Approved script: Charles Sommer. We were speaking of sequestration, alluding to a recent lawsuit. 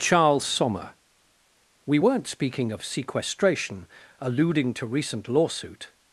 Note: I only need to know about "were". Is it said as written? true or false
false